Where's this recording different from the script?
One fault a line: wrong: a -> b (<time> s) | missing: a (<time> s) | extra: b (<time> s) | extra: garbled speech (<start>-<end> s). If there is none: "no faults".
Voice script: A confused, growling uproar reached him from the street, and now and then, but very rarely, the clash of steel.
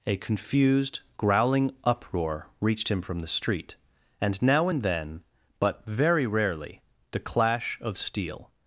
no faults